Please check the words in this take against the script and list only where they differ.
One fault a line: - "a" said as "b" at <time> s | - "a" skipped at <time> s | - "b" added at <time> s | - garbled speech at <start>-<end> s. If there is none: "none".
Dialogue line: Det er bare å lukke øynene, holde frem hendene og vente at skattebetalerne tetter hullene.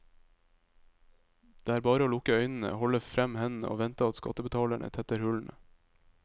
none